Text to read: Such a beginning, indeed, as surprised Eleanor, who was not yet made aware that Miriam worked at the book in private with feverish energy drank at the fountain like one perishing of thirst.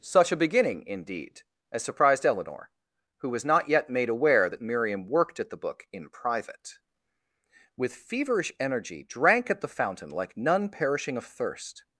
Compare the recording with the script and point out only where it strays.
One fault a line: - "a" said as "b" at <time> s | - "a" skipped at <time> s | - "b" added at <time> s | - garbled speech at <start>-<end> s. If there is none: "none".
- "one" said as "none" at 10.4 s